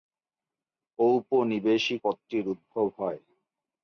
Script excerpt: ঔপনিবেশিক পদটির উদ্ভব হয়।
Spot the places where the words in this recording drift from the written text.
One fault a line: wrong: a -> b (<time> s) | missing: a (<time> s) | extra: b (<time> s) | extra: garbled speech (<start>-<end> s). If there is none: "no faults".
no faults